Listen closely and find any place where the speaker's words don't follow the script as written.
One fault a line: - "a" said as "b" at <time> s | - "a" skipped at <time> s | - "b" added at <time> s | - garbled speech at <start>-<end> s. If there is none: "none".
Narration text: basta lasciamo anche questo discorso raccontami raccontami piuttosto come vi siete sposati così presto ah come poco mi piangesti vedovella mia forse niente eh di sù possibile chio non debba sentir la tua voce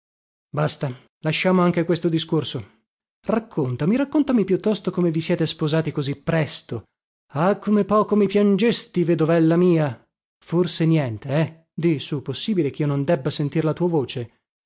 none